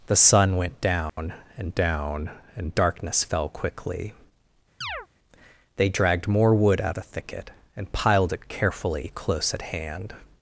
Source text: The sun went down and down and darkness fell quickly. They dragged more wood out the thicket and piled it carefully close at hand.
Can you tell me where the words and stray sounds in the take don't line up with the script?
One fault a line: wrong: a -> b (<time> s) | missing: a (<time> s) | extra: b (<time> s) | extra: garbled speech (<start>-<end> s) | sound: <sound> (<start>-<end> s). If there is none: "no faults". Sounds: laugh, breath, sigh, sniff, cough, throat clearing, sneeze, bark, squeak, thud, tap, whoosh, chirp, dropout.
sound: dropout (1.1-1.2 s)
sound: chirp (4.8-5.1 s)